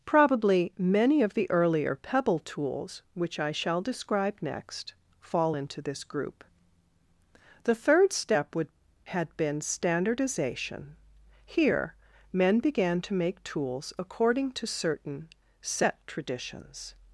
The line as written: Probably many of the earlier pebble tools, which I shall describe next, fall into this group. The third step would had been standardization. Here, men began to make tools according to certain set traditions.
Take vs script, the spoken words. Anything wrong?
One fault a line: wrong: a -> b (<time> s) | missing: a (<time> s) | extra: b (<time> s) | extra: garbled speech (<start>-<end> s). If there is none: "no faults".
no faults